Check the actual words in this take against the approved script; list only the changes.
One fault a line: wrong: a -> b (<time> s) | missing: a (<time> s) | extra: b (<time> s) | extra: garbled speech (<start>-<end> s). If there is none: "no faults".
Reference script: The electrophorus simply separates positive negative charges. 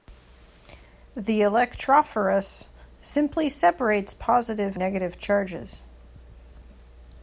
no faults